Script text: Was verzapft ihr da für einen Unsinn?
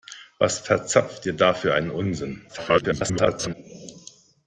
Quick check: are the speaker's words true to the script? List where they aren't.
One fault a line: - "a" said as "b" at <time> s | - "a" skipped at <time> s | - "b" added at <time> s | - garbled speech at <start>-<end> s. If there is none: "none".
- garbled speech at 2.5-3.5 s